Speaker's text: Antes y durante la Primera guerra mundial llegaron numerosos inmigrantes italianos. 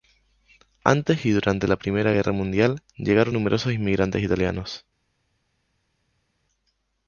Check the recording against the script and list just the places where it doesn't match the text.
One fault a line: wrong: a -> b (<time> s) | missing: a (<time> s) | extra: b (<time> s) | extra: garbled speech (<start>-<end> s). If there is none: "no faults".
no faults